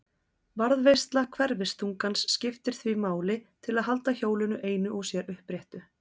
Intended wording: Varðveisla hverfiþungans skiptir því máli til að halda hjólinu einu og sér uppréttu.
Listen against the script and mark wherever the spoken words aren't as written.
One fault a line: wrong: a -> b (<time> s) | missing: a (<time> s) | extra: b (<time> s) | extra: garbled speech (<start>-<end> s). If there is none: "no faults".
no faults